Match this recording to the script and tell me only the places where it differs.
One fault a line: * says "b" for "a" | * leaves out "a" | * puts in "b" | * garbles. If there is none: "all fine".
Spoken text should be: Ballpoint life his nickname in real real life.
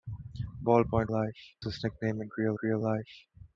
all fine